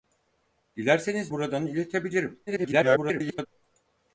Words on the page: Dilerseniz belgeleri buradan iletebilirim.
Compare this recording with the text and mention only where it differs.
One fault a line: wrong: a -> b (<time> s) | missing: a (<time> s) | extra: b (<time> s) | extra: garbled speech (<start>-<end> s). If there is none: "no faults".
missing: belgeleri (1.3 s)
extra: garbled speech (2.5-3.5 s)